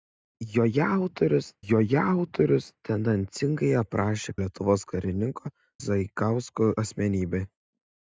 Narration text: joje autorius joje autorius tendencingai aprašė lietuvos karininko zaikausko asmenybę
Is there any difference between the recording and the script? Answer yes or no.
no